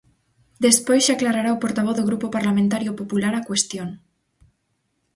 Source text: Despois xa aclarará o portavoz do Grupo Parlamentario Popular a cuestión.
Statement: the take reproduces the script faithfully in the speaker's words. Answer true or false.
true